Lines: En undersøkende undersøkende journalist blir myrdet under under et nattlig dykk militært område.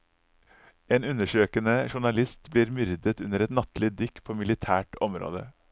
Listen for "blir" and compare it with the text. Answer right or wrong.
right